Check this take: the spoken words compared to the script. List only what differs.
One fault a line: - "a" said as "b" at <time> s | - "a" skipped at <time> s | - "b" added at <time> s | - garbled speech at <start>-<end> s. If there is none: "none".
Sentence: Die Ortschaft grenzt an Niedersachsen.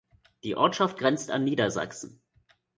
none